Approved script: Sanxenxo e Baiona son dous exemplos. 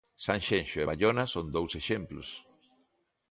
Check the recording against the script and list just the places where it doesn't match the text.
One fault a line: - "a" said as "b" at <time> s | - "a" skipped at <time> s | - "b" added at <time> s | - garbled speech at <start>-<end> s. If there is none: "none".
none